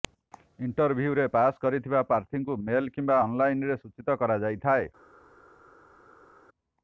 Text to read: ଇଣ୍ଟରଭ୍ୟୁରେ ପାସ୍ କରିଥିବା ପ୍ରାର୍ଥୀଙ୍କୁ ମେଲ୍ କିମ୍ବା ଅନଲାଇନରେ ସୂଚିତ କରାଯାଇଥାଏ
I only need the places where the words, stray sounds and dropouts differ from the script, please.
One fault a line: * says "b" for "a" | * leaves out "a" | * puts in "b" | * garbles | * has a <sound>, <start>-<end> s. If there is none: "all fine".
all fine